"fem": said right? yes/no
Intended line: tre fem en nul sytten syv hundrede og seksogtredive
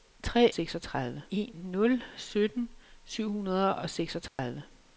no